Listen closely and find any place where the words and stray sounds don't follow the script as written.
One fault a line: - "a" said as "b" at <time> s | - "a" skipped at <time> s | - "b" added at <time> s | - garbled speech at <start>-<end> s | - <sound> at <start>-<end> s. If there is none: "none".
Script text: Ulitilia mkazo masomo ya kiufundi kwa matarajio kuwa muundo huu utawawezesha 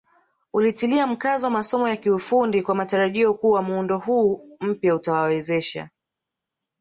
- "mpya" added at 4.6 s